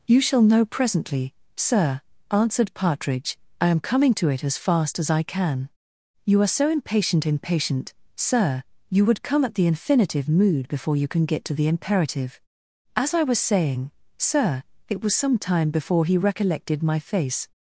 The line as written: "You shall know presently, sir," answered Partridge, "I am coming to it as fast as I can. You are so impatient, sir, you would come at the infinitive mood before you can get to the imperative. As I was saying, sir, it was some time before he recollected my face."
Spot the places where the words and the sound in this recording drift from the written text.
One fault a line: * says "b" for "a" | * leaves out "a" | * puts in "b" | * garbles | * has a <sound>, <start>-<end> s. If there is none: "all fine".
* puts in "impatient"